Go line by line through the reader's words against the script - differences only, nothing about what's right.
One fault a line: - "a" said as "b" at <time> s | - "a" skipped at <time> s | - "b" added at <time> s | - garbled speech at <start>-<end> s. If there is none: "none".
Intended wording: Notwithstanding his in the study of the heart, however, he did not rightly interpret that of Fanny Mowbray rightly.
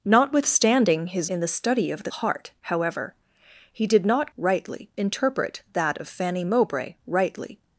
none